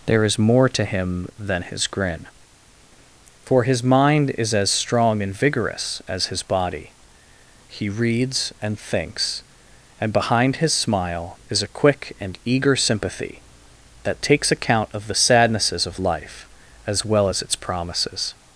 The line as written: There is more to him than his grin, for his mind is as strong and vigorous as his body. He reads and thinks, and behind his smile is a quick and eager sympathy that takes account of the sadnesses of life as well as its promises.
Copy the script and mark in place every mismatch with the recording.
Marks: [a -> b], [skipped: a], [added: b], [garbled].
There is more to him than his grin, for his mind is as strong and vigorous as his body. He reads and thinks, and behind his smile is a quick and eager sympathy that takes account of the sadnesses of life as well as its promises.